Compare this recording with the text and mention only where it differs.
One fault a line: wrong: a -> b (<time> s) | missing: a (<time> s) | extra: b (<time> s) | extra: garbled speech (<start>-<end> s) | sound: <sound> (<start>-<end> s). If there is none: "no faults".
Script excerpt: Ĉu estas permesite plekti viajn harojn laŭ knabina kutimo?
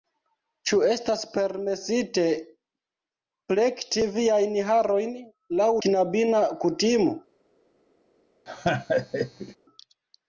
sound: laugh (8.5-9.6 s)